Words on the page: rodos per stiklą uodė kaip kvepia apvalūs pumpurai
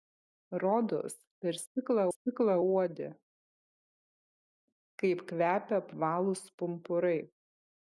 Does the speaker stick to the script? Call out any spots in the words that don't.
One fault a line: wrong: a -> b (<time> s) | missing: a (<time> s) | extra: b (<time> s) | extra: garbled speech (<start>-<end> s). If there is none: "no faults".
extra: stiklą (2.1 s)